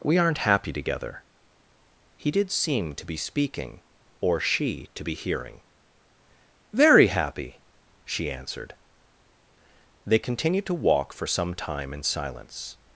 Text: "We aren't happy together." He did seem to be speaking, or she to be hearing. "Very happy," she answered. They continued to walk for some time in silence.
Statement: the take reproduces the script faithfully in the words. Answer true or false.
true